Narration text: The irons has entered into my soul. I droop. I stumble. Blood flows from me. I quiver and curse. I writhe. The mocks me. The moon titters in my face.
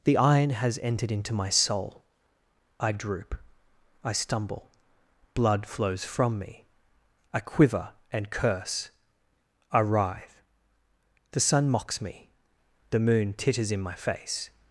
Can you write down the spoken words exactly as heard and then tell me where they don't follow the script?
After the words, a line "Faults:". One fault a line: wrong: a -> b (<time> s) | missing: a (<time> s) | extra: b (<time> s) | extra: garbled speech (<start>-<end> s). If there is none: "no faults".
The iron has entered into my soul. I droop. I stumble. Blood flows from me. I quiver and curse. I writhe. The sun mocks me. The moon titters in my face.
Faults:
wrong: irons -> iron (0.2 s)
extra: sun (11.4 s)